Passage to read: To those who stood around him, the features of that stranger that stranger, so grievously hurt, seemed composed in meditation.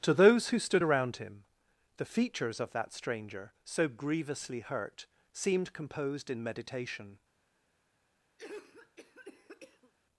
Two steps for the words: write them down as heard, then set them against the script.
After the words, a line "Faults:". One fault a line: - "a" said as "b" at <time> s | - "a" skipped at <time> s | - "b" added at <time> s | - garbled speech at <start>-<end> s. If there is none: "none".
To those who stood around him, the features of that stranger, so grievously hurt, seemed composed in meditation.
Faults:
- "that stranger" skipped at 3.5 s